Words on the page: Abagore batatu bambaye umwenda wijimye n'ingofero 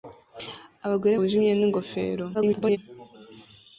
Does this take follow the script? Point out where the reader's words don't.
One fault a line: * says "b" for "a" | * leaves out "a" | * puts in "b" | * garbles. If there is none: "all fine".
* leaves out "batatu bambaye umwenda"
* garbles